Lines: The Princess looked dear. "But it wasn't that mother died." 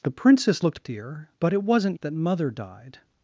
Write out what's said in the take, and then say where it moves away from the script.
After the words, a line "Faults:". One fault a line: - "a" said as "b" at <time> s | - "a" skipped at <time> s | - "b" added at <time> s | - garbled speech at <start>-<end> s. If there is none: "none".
The Princess looked dear. "But it wasn't that mother died."
Faults:
none